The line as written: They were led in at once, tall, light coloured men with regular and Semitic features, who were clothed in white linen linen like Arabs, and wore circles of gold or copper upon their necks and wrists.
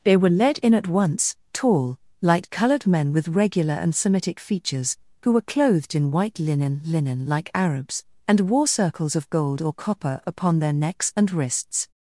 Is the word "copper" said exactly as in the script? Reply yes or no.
yes